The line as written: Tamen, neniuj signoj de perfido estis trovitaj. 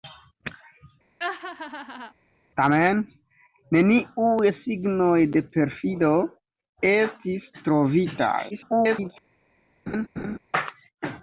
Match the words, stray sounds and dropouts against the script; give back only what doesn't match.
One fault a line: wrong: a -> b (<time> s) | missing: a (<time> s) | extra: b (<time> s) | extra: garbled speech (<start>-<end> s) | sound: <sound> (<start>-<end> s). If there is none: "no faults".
sound: laugh (1.2-2.1 s)
extra: garbled speech (8.5-9.1 s)
sound: laugh (9.9-10.4 s)